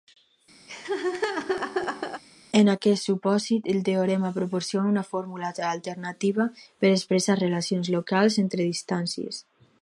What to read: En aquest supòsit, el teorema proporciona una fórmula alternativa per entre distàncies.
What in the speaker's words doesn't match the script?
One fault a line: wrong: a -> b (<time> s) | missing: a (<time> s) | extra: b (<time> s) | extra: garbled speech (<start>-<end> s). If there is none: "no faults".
extra: expressar relacions locals (7.0 s)